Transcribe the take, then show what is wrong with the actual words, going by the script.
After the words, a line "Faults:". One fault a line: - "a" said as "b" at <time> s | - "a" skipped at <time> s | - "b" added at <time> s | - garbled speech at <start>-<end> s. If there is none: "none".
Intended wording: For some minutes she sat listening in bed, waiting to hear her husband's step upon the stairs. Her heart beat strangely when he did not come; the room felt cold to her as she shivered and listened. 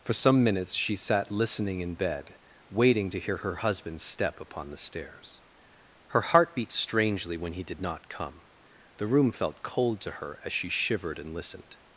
For some minutes she sat listening in bed, waiting to hear her husband's step upon the stairs. Her heart beat strangely when he did not come; the room felt cold to her as she shivered and listened.
Faults:
none